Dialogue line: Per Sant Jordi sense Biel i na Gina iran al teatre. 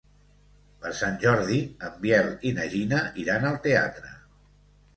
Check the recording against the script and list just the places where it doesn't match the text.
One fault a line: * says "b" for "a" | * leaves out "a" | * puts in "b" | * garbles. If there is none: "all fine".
* says "en" for "sense"